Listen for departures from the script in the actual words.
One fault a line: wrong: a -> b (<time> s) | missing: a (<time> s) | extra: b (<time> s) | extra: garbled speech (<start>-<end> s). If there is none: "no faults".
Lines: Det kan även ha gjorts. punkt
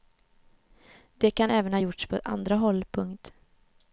extra: på andra håll (2.1 s)